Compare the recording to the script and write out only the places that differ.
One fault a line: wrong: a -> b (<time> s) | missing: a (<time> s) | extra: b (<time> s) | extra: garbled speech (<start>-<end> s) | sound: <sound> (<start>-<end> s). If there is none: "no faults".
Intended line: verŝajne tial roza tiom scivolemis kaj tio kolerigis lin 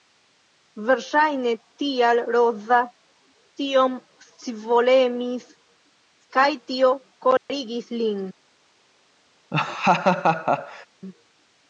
sound: dropout (7.4-7.5 s)
sound: laugh (9.5-10.9 s)